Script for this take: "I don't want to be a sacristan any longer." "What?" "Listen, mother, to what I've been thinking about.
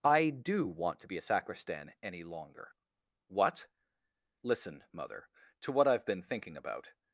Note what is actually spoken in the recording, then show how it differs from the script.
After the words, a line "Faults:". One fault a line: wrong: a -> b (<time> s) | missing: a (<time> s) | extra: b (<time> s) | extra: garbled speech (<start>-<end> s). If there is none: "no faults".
"I do want to be a sacristan any longer." "What?" "Listen, mother, to what I've been thinking about.
Faults:
wrong: don't -> do (0.3 s)